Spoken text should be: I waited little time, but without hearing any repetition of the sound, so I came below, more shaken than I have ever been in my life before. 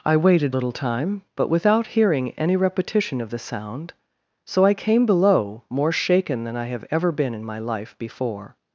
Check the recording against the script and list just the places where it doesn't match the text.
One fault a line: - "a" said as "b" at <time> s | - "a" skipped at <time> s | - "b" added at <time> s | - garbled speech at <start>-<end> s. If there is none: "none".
none